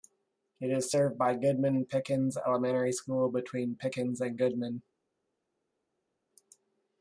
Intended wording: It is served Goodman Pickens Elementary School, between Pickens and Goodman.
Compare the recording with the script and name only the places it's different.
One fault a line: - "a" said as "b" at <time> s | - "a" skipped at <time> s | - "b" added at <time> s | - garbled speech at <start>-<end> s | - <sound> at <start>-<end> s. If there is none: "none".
- "by" added at 1.2 s